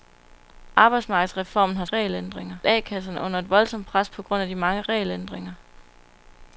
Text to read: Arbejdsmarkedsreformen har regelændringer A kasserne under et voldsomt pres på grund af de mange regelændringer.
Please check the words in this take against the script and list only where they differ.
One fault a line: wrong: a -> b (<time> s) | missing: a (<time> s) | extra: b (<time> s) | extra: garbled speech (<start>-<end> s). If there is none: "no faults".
no faults